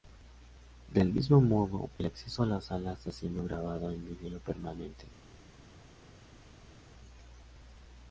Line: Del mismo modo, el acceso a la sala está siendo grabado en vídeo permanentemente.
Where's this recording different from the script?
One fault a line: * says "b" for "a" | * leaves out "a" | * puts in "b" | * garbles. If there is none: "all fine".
all fine